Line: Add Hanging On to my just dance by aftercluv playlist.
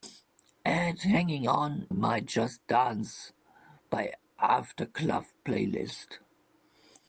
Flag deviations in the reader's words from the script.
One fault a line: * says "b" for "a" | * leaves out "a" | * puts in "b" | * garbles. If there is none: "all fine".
* leaves out "to"